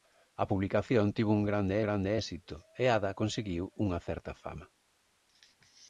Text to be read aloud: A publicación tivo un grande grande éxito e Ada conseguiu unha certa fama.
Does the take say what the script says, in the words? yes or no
yes